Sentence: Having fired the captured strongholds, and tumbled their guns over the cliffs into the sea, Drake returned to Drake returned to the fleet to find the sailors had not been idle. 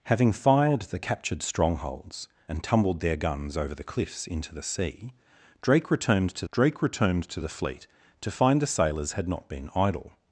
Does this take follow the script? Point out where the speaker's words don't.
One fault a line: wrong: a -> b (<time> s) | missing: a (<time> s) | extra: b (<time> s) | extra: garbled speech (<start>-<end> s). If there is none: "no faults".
no faults